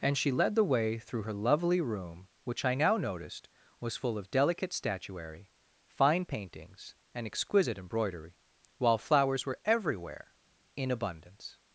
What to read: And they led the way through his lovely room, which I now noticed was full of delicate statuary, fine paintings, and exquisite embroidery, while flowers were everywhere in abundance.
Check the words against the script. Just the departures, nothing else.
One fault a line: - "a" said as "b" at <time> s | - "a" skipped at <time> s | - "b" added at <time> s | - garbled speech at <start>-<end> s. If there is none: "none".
- "they" said as "she" at 0.2 s
- "his" said as "her" at 1.2 s